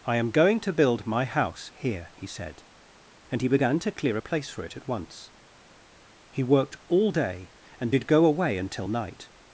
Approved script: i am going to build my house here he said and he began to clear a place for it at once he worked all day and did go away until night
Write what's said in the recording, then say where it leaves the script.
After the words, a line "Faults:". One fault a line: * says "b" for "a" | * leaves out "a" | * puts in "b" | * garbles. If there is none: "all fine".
i am going to build my house here he said and he began to clear a place for it at once he worked all day and did go away until night
Faults:
all fine